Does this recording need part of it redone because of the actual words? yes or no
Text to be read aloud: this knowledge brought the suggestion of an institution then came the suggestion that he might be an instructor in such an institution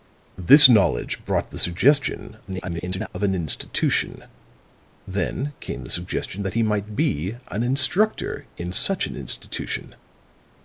yes